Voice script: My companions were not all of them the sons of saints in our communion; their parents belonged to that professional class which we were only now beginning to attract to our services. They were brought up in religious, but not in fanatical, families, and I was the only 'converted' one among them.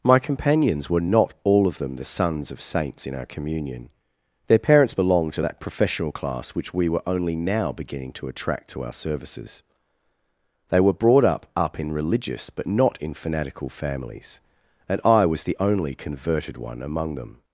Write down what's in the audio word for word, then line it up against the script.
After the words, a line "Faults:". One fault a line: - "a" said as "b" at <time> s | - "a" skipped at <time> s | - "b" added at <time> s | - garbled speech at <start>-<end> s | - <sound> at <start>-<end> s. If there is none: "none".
My companions were not all of them the sons of saints in our communion; their parents belonged to that professional class which we were only now beginning to attract to our services. They were brought up up in religious, but not in fanatical, families, and I was the only 'converted' one among them.
Faults:
- "up" added at 11.5 s